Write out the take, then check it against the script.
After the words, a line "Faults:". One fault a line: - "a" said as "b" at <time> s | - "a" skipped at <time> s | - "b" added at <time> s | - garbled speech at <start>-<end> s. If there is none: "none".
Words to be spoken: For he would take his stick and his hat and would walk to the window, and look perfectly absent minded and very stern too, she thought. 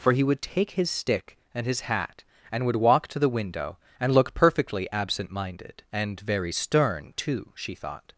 For he would take his stick and his hat and would walk to the window, and look perfectly absent minded and very stern too, she thought.
Faults:
none